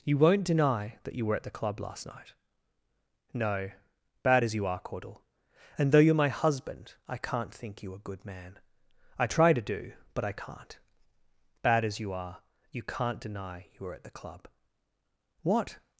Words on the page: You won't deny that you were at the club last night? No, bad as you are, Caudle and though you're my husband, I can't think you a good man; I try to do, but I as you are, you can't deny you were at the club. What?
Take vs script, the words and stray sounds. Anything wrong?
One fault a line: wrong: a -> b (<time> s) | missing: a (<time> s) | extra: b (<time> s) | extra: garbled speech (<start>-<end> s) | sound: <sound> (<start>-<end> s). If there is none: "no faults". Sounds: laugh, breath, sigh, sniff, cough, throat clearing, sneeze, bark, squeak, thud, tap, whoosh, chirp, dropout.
extra: can't bad (10.3 s)